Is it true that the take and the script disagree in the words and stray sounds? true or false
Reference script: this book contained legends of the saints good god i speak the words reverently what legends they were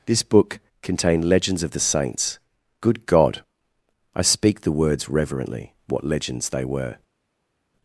false